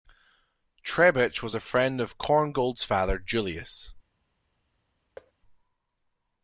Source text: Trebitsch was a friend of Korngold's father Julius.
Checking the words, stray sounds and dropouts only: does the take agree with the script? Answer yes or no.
no